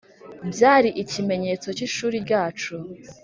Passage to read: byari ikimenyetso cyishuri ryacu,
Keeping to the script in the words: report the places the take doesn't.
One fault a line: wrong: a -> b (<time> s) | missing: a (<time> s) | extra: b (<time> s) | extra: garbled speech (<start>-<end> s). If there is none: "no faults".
no faults